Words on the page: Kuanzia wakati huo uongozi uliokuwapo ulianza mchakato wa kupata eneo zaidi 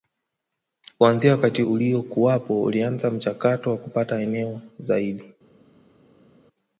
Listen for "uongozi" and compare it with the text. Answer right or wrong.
wrong